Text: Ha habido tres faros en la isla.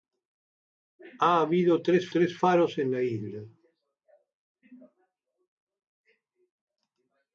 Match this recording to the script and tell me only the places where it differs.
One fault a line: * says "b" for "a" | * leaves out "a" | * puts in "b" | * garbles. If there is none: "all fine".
* puts in "tres"